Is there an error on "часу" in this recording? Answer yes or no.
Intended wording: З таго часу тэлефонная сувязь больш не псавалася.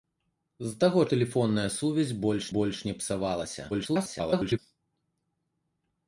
yes